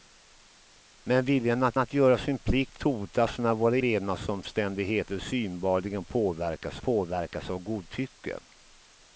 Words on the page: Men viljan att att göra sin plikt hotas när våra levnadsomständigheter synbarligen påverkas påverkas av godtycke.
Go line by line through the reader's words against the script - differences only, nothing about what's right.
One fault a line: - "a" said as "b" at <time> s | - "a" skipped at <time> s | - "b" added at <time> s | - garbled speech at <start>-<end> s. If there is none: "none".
none